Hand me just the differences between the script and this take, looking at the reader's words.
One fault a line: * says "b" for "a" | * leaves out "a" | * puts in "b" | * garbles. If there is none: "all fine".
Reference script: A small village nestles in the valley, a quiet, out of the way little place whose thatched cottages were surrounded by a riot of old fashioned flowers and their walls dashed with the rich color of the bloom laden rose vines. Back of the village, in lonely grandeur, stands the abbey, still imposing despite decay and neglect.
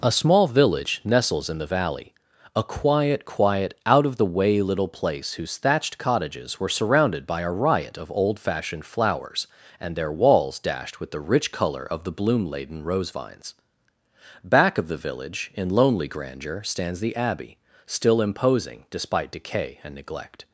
* puts in "quiet"